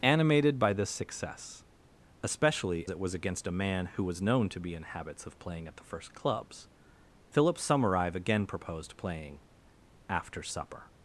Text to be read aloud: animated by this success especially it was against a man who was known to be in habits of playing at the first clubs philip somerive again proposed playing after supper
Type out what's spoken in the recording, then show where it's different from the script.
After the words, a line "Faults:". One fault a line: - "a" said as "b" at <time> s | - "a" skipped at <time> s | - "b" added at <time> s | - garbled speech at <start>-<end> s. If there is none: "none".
animated by this success especially it was against a man who was known to be in habits of playing at the first clubs philip somerive again proposed playing after supper
Faults:
none